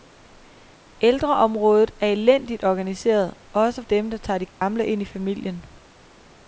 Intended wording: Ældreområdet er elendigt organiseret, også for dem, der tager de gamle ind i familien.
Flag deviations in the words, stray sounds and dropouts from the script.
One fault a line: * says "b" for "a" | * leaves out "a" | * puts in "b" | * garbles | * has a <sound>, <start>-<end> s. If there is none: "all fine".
* leaves out "for"
* has a dropout, 4.5-4.6 s